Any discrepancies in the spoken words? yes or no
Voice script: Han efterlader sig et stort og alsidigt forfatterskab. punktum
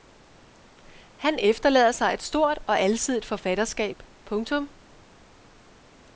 no